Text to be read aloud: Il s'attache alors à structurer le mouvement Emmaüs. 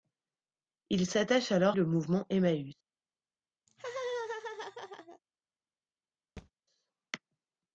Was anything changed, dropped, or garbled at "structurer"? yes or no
yes